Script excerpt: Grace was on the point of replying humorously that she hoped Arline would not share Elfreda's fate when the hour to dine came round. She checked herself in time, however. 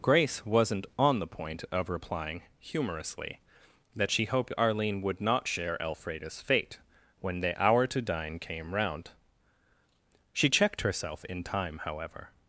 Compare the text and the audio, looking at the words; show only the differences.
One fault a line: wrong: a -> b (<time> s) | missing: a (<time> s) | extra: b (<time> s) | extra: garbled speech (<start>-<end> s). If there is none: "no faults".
wrong: was -> wasn't (0.5 s)